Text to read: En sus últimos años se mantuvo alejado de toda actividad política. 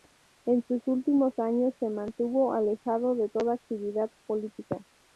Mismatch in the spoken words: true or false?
false